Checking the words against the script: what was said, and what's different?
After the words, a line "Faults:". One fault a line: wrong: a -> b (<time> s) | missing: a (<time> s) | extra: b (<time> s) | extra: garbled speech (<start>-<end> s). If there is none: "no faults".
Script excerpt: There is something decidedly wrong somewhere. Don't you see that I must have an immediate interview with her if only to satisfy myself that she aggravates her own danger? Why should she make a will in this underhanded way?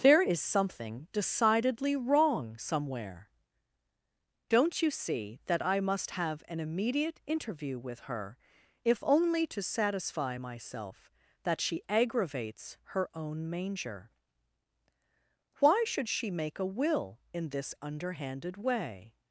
There is something decidedly wrong somewhere. Don't you see that I must have an immediate interview with her if only to satisfy myself that she aggravates her own manger? Why should she make a will in this underhanded way?
Faults:
wrong: danger -> manger (13.5 s)